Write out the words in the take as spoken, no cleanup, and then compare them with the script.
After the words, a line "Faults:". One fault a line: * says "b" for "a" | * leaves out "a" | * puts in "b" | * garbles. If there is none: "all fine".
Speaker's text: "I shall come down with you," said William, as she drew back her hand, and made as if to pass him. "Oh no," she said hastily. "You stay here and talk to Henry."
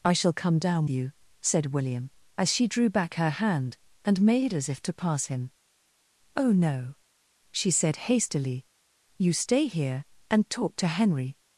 "I shall come down you," said William, as she drew back her hand, and made as if to pass him. "Oh no," she said hastily. "You stay here and talk to Henry."
Faults:
* leaves out "with"